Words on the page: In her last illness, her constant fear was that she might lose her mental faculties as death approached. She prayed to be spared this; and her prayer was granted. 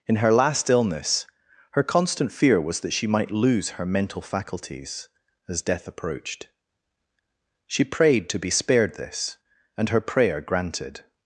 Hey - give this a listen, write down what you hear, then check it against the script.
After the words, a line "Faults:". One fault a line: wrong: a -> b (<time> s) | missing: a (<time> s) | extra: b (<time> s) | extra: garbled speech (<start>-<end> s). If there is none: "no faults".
In her last illness, her constant fear was that she might lose her mental faculties as death approached. She prayed to be spared this; and her prayer granted.
Faults:
missing: was (10.4 s)